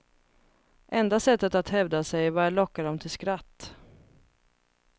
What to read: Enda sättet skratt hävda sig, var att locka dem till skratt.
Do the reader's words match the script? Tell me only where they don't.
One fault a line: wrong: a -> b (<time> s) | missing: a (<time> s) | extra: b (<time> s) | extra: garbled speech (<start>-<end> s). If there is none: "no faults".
wrong: skratt -> att (1.5 s)